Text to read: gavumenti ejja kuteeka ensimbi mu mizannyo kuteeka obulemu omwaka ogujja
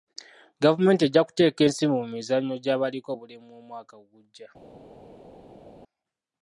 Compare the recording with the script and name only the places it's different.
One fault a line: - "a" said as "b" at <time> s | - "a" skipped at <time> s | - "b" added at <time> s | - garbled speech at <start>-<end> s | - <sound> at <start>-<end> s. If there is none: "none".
- "kuteeka" said as "gy'abaliko" at 2.6 s